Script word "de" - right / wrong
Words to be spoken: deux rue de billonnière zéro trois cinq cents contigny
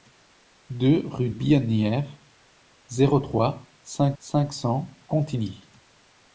wrong